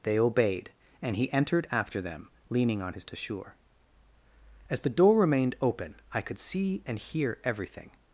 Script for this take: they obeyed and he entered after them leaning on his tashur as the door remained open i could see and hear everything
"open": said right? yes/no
yes